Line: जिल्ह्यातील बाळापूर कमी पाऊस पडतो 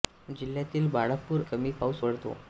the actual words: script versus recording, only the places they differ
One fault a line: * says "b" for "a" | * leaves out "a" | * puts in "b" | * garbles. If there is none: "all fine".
all fine